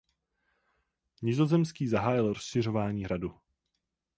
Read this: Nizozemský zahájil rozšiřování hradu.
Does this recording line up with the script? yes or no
yes